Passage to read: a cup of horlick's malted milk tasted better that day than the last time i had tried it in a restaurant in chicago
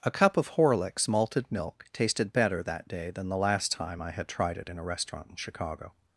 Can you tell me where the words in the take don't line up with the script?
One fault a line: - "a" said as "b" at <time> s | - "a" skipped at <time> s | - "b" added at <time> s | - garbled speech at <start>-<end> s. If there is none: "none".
none